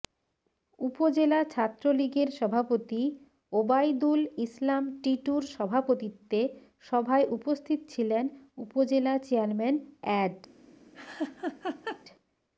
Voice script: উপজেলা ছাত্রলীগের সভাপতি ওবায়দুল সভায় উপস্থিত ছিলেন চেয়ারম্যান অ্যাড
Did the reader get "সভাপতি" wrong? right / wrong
right